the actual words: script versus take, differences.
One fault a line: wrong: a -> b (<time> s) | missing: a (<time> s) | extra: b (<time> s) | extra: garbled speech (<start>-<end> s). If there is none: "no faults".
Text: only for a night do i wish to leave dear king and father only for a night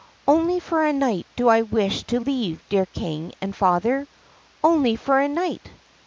no faults